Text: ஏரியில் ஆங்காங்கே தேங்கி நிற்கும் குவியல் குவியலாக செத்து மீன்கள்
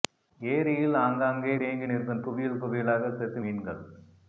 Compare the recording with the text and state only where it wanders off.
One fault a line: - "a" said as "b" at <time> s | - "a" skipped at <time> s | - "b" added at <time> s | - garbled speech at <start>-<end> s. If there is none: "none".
none